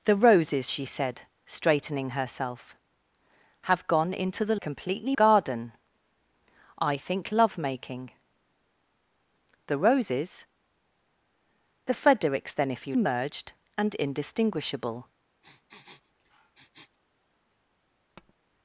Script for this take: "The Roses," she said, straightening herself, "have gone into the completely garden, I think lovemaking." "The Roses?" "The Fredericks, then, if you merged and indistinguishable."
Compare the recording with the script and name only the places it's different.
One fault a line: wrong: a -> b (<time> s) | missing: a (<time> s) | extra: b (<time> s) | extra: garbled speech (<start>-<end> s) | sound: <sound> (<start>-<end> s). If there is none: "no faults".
sound: sniff (15.4-17.0 s)
sound: tap (18.2-18.3 s)